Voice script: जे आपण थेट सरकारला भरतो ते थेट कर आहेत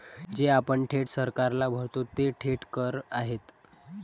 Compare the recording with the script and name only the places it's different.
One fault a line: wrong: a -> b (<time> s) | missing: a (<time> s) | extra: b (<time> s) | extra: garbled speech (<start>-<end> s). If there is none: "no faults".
no faults